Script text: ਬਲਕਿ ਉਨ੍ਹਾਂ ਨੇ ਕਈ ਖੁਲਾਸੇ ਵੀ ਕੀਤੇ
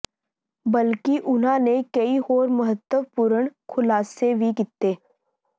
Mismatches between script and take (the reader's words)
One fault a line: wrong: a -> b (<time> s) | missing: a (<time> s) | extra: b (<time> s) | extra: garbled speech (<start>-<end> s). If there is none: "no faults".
extra: ਹੋਰ ਮਹੱਤਵਪੂਰਣ (2.2 s)